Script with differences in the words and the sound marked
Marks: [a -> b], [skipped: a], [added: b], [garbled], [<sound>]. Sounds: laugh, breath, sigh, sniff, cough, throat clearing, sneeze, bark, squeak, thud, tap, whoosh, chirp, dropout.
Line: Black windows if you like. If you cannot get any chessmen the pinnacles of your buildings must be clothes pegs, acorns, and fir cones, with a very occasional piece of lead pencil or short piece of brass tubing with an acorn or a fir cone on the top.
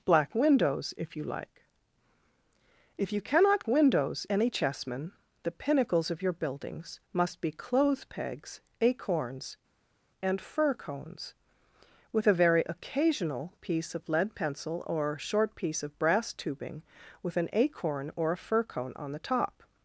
Black windows if you like. If you cannot [get -> windows] any chessmen the pinnacles of your buildings must be clothes pegs, acorns, and fir cones, with a very occasional piece of lead pencil or short piece of brass tubing with an acorn or a fir cone on the top.